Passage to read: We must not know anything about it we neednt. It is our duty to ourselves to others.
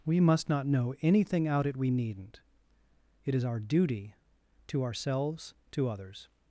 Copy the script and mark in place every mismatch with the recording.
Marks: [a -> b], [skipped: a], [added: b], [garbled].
We must not know anything [about -> out] it we neednt. It is our duty to ourselves to others.